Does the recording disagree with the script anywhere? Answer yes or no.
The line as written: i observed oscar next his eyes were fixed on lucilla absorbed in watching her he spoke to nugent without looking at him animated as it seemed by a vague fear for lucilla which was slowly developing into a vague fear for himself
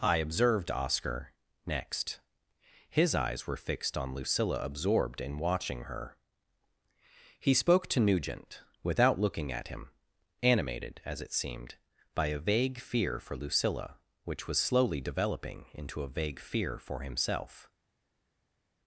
no